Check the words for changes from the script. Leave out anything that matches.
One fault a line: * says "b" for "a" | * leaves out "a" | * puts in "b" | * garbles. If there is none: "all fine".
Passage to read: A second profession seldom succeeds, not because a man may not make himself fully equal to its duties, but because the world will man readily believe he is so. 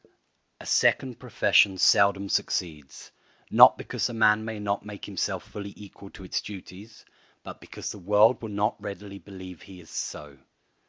* says "not" for "man"